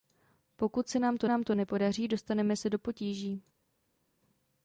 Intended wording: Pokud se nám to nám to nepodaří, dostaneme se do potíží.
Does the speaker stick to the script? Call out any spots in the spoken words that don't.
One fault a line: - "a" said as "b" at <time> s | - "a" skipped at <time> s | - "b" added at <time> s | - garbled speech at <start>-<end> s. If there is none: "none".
none